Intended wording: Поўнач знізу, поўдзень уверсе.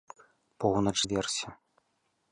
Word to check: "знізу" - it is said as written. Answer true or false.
false